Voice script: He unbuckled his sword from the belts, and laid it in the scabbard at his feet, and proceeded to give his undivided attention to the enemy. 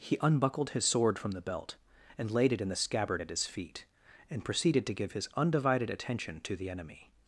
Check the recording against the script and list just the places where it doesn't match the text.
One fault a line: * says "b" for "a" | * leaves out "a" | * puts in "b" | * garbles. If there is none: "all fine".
* says "belt" for "belts"